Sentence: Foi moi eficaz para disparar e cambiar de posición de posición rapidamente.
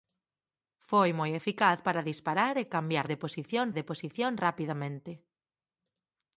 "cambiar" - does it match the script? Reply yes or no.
yes